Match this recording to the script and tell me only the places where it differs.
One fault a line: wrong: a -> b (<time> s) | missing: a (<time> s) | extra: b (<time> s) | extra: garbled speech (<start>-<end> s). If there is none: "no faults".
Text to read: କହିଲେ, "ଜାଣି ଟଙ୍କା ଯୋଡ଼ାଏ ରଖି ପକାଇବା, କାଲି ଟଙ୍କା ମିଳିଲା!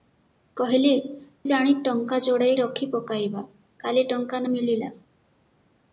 no faults